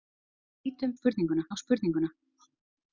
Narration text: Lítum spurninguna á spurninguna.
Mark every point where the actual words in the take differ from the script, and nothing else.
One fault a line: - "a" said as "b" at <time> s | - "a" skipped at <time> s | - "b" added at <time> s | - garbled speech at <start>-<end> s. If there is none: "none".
none